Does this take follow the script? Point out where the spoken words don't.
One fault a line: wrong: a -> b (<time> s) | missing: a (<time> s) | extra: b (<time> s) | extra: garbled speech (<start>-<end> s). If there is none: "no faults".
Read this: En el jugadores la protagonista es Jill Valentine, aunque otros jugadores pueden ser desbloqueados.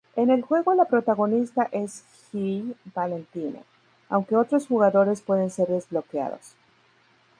wrong: jugadores -> juego (0.4 s)